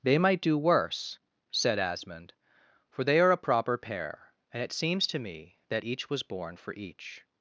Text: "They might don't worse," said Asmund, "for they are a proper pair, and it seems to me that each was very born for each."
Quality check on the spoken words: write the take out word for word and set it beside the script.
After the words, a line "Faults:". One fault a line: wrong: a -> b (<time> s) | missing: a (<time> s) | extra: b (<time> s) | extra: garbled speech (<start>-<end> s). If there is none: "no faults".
"They might do worse," said Asmund, "for they are a proper pair, and it seems to me that each was born for each."
Faults:
wrong: don't -> do (0.4 s)
missing: very (6.2 s)